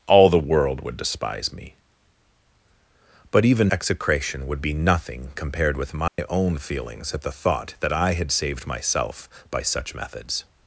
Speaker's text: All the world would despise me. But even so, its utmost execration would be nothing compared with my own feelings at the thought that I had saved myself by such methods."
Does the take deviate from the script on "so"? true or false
true